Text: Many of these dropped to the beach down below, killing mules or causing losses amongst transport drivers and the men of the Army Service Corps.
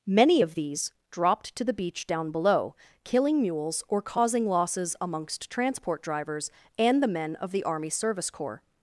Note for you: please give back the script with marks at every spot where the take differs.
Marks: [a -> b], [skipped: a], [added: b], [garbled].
Many of these dropped to the beach down below, killing mules or causing losses amongst transport drivers and the men of the Army Service Corps.